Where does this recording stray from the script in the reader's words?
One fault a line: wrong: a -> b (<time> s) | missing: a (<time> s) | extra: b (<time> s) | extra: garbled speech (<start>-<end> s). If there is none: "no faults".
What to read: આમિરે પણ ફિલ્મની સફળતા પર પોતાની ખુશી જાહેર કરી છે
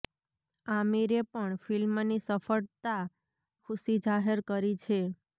missing: પર પોતાની (3.0 s)